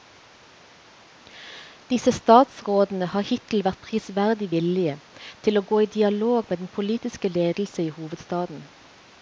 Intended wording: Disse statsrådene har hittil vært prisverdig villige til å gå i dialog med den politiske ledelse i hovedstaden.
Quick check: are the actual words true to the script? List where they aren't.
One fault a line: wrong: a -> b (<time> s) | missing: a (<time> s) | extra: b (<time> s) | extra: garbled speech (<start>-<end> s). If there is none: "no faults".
no faults